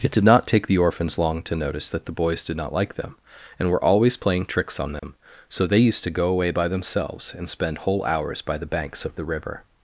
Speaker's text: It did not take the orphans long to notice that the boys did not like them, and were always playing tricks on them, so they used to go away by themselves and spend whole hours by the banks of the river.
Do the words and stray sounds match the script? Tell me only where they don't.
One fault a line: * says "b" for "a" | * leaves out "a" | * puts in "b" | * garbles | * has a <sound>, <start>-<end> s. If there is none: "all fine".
* has a dropout, 5.0-5.0 s